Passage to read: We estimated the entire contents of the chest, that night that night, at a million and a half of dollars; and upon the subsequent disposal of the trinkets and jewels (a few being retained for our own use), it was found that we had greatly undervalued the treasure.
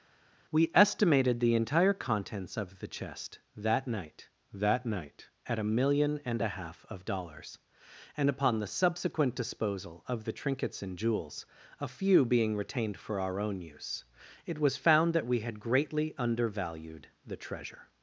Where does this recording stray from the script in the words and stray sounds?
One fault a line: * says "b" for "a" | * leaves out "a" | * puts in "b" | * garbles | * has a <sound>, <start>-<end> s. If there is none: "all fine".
all fine